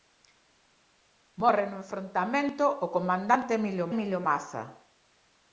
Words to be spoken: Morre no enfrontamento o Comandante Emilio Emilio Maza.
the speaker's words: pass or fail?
pass